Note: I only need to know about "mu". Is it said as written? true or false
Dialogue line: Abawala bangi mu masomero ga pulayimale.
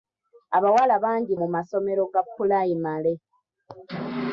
true